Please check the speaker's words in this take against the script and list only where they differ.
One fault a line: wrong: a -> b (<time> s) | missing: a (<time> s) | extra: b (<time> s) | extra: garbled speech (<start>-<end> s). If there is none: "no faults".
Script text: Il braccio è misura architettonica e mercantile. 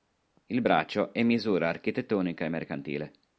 no faults